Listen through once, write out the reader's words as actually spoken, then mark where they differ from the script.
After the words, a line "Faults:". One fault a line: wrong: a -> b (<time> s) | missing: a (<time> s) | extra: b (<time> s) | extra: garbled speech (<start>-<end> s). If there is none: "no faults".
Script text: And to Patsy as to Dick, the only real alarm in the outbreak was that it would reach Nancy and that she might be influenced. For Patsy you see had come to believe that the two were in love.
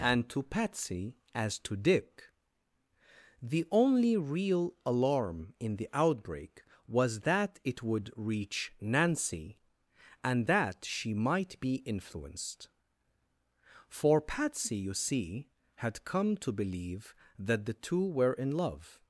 And to Patsy as to Dick, the only real alarm in the outbreak was that it would reach Nancy and that she might be influenced. For Patsy you see had come to believe that the two were in love.
Faults:
no faults